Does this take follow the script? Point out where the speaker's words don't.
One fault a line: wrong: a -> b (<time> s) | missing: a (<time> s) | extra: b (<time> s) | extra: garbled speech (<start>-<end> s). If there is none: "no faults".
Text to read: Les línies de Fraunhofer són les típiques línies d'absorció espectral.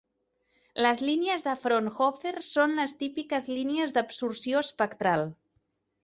no faults